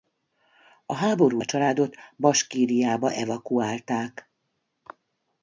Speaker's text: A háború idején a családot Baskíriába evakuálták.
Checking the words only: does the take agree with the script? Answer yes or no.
no